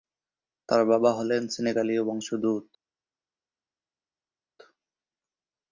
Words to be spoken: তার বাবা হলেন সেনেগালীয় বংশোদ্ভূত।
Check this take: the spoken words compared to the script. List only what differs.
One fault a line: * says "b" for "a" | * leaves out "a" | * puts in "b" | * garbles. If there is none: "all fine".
all fine